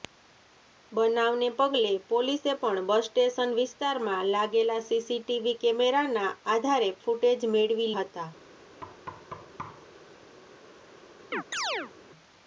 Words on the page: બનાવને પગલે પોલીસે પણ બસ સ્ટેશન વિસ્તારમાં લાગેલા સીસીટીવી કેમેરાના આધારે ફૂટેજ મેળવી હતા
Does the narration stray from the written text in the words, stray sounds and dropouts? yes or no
yes